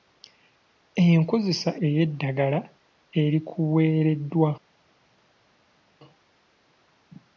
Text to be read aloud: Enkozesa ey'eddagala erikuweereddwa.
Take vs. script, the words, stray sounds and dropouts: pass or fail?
pass